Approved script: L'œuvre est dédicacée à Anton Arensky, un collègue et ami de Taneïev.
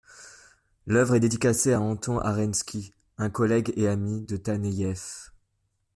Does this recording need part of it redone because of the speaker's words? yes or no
no